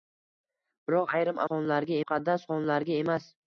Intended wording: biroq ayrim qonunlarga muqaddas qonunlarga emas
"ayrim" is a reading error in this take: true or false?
false